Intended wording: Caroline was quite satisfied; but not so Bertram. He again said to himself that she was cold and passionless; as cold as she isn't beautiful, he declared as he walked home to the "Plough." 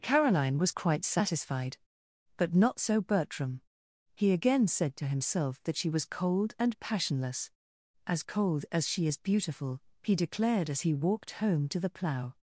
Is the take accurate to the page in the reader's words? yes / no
no